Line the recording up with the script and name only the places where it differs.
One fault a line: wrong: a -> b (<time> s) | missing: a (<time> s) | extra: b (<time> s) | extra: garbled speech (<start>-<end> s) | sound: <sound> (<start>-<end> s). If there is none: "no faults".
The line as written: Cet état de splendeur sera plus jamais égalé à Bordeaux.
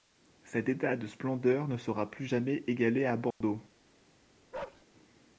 extra: ne (1.7 s)
sound: dropout (3.3-3.4 s)
sound: bark (4.5-4.9 s)